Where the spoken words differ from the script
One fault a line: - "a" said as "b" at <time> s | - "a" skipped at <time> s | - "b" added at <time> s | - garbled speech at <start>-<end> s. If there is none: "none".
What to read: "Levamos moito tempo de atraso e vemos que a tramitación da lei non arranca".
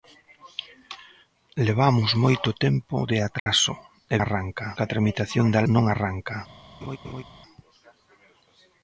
- "vemos" said as "arranca" at 4.2 s
- "lei" skipped at 5.6 s